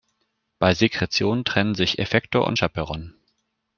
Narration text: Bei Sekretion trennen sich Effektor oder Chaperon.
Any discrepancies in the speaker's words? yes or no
yes